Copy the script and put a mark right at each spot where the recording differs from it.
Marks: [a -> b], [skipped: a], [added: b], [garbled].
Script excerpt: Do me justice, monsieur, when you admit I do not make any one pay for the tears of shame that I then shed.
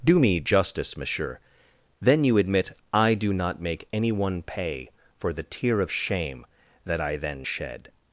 Do me justice, monsieur, [when -> then] you admit I do not make any one pay for the [tears -> tear] of shame that I then shed.